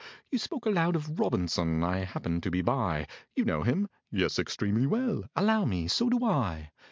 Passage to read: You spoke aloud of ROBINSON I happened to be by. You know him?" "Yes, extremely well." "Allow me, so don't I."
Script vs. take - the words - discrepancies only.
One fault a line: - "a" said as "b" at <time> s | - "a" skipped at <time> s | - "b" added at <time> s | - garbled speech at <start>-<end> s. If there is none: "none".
- "don't" said as "do" at 6.1 s